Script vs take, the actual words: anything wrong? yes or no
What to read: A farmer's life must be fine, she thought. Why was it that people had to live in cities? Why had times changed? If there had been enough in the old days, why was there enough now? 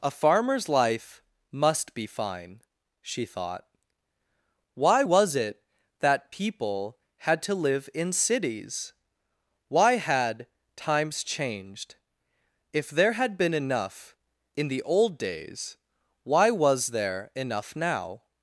no